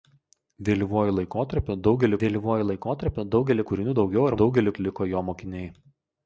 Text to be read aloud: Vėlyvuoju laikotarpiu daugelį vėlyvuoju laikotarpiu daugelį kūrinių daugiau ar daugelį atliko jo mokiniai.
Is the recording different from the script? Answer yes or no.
no